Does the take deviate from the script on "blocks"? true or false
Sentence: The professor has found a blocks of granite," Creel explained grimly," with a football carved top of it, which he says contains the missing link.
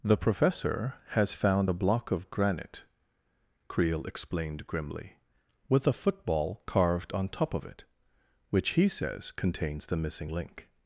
true